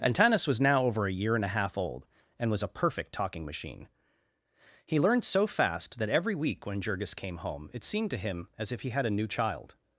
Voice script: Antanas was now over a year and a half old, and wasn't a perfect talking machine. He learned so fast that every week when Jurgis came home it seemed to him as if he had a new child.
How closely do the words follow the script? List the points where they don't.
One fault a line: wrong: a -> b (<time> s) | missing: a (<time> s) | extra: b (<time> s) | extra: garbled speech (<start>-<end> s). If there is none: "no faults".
wrong: wasn't -> was (2.5 s)